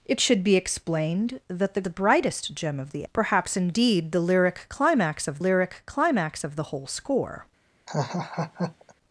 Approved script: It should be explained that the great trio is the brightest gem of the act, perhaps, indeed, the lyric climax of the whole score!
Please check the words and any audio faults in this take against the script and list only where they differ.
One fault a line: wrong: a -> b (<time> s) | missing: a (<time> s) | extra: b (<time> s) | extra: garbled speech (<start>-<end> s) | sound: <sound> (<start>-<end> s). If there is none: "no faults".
missing: great trio is (1.8 s)
missing: act (3.1 s)
extra: lyric climax of (5.4 s)
sound: laugh (7.9-8.9 s)